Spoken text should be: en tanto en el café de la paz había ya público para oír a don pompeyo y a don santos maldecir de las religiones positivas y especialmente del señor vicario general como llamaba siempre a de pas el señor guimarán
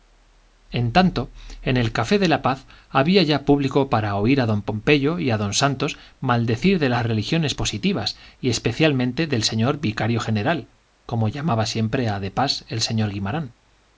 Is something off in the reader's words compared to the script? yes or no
no